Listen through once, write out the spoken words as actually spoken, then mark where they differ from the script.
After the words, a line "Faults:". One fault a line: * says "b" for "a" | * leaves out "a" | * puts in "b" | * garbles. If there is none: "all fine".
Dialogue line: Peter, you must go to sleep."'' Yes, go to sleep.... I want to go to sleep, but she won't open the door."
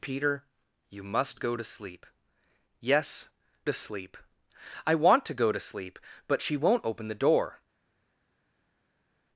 Peter, you must go to sleep."'' Yes, to sleep.... I want to go to sleep, but she won't open the door."
Faults:
* leaves out "go"